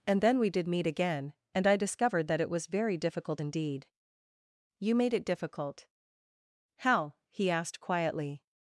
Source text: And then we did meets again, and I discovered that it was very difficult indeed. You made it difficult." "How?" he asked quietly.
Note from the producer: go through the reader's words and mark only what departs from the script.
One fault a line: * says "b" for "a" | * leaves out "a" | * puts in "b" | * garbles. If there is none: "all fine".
* says "meet" for "meets"